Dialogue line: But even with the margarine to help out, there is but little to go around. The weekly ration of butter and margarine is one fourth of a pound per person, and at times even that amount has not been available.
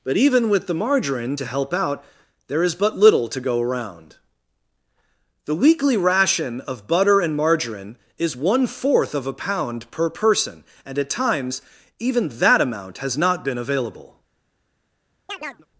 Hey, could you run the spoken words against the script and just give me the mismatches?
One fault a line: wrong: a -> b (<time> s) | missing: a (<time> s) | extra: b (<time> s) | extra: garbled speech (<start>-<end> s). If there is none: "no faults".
no faults